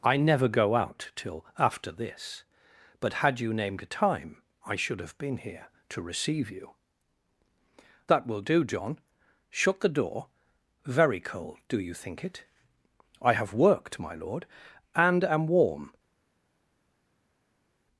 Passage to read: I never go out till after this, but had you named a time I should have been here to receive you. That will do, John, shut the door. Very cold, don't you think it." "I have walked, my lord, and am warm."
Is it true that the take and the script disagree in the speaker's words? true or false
true